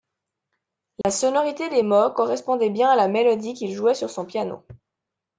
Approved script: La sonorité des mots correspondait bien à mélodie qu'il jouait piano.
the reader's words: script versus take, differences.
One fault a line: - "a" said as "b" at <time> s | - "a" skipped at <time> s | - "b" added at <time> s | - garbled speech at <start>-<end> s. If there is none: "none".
- "la" added at 2.9 s
- "sur son" added at 3.9 s